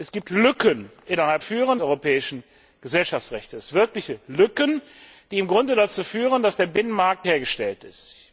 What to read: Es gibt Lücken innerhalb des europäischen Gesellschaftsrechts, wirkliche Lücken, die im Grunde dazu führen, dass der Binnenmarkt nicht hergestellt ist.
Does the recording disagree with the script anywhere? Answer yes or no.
yes